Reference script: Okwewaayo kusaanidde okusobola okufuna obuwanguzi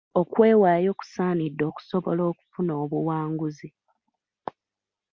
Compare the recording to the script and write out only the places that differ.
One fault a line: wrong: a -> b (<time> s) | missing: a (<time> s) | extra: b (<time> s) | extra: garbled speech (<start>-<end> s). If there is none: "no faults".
no faults